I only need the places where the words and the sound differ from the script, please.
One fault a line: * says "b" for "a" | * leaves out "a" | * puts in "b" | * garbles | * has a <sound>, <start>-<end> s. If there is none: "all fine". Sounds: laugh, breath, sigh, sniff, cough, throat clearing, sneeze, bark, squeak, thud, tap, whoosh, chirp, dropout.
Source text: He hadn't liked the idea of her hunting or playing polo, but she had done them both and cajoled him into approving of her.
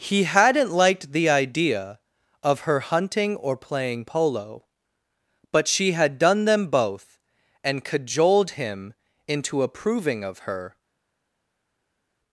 all fine